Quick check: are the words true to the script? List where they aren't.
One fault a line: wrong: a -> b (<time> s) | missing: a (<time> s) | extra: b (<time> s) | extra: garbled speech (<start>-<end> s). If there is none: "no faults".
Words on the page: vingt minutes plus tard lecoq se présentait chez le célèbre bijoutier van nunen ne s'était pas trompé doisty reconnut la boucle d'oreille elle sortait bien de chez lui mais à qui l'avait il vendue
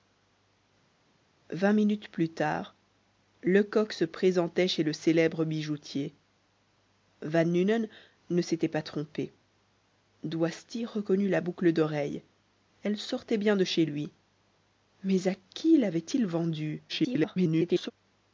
extra: garbled speech (16.9-17.9 s)